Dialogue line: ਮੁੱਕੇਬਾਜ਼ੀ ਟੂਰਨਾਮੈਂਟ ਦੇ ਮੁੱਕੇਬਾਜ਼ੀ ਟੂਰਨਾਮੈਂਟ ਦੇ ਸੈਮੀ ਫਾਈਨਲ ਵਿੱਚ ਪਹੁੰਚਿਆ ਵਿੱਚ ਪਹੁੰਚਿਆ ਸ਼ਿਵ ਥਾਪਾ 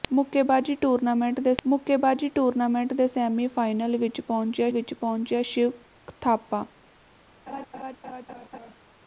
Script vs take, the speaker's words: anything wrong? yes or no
no